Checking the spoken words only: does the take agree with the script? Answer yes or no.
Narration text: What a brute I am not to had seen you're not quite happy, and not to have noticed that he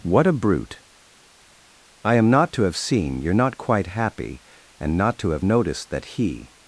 no